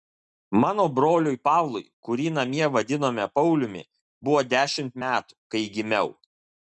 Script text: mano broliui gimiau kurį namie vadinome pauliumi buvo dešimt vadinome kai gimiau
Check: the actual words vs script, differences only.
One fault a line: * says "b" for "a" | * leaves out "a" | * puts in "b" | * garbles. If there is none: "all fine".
* says "pavlui" for "gimiau"
* says "metų" for "vadinome"